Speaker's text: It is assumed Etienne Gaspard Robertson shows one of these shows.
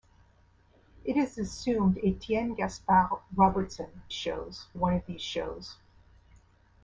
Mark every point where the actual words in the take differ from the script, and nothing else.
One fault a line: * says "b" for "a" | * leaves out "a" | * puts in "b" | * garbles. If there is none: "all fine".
all fine